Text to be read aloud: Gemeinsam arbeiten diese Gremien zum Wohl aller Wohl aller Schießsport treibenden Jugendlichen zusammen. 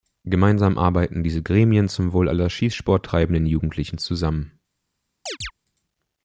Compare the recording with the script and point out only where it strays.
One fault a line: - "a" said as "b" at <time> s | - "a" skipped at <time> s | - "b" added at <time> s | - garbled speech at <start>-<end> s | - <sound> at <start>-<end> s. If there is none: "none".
- "Wohl aller" skipped at 2.5 s
- chirp at 5.3-5.5 s